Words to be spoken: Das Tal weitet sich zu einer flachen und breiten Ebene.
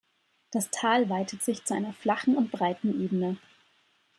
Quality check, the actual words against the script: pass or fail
pass